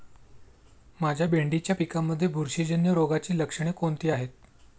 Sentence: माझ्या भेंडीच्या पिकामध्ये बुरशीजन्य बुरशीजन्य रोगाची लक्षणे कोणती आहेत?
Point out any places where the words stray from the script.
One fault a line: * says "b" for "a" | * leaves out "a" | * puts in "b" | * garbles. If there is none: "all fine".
* leaves out "बुरशीजन्य"